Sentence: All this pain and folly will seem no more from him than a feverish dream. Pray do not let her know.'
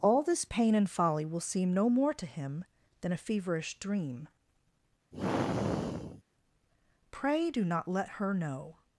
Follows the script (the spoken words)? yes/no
no